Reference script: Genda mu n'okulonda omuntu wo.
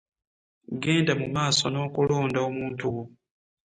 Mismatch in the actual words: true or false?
true